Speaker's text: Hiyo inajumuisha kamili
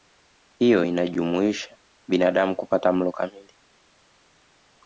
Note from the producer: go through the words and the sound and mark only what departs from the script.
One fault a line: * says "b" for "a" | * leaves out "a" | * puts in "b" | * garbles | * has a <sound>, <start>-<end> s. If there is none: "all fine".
* puts in "binadamu kupata mlo"